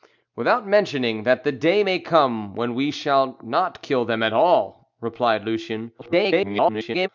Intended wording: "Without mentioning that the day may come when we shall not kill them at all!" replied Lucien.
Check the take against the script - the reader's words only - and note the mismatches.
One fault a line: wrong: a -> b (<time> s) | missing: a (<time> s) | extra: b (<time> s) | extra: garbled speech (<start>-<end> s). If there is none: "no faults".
extra: garbled speech (6.0-7.1 s)